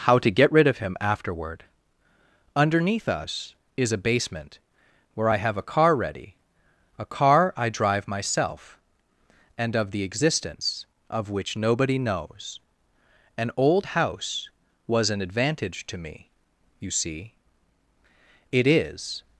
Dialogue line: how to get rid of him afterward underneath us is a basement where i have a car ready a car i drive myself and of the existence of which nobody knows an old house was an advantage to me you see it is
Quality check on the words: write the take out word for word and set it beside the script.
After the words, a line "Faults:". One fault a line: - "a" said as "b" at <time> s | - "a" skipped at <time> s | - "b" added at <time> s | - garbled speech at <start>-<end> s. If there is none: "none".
how to get rid of him afterward underneath us is a basement where i have a car ready a car i drive myself and of the existence of which nobody knows an old house was an advantage to me you see it is
Faults:
none